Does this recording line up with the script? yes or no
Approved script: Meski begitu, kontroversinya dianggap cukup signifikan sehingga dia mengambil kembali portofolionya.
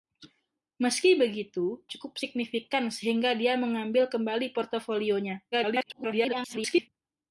no